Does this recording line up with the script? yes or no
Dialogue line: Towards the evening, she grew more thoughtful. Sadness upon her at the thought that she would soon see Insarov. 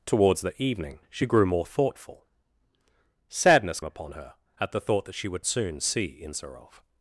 yes